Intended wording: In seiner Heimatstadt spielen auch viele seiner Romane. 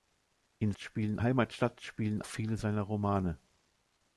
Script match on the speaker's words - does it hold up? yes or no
no